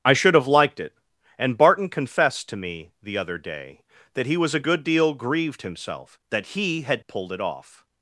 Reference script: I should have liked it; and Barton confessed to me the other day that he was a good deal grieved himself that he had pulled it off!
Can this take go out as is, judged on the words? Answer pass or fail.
pass